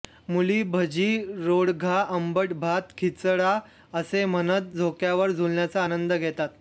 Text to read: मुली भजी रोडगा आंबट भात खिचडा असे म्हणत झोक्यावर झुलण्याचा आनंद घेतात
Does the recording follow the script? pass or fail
pass